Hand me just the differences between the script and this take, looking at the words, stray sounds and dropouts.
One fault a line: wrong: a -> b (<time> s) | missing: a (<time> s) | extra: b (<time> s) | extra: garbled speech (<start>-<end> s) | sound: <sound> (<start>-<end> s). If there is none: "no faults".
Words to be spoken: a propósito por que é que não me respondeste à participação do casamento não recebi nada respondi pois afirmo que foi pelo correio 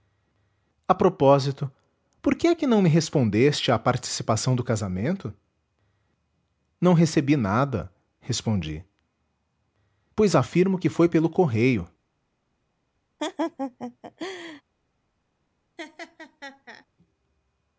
sound: laugh (13.2-14.6 s)
sound: laugh (15.8-16.9 s)